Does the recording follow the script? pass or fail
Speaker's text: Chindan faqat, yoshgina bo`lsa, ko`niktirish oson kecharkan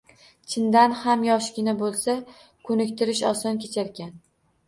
fail